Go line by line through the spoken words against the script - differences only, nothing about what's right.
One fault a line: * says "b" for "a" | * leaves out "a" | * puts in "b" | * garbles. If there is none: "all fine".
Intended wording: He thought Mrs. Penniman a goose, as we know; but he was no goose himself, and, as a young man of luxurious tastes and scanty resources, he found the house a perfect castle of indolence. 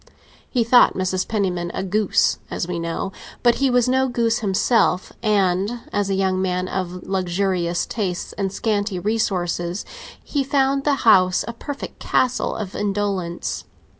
all fine